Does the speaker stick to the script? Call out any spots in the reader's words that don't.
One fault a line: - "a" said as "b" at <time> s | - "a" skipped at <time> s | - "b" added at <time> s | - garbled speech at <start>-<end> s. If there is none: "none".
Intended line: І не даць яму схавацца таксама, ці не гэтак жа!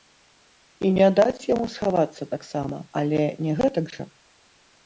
- "ці" said as "але" at 3.0 s